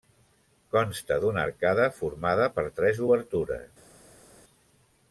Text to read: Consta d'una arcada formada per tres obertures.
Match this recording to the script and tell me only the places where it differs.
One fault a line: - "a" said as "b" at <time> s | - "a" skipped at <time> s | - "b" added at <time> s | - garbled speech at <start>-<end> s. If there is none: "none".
none